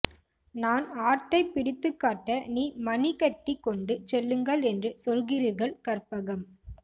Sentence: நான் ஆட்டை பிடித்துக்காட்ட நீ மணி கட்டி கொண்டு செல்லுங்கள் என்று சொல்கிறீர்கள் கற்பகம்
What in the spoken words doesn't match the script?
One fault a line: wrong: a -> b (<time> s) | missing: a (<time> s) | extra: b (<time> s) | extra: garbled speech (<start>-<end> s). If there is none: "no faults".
no faults